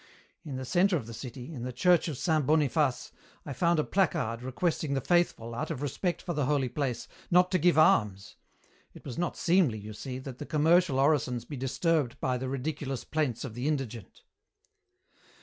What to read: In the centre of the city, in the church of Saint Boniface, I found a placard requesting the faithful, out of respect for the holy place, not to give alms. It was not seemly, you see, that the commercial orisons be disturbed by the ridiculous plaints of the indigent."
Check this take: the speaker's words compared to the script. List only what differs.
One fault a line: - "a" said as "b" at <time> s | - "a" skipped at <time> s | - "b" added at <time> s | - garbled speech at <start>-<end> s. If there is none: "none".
none